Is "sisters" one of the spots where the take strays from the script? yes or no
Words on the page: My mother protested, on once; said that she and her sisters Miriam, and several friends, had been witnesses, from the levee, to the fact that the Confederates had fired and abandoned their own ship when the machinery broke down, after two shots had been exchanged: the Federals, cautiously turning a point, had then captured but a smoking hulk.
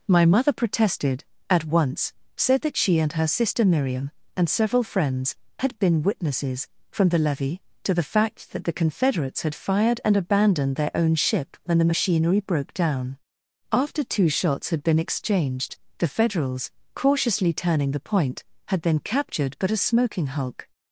yes